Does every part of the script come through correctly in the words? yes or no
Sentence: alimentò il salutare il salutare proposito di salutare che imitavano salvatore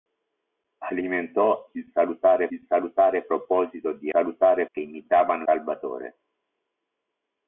yes